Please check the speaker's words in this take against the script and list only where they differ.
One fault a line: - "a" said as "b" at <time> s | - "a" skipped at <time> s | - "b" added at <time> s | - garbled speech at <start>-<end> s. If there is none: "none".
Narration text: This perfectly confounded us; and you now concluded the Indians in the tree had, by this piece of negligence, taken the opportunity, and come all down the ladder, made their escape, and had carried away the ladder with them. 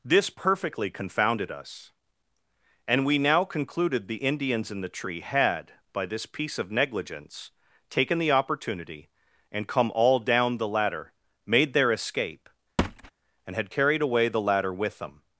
- "you" said as "we" at 3.1 s